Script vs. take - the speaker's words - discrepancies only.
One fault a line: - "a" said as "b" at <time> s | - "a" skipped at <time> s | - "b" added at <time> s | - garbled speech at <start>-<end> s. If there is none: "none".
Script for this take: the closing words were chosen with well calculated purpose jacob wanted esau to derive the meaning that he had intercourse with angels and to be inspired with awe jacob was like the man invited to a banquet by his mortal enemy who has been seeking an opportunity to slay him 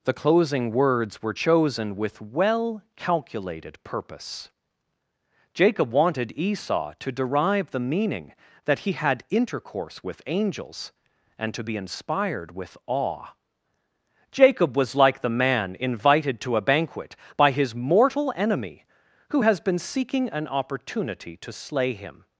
none